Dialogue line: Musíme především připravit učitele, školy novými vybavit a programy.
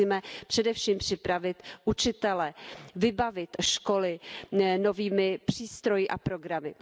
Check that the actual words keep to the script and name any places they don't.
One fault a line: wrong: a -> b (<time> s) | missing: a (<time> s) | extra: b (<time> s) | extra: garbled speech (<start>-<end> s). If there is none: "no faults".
extra: vybavit (3.0 s)
wrong: vybavit -> přístroji (5.4 s)